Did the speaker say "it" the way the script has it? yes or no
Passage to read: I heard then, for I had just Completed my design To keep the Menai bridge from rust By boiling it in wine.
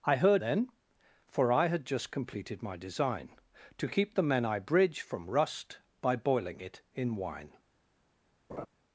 yes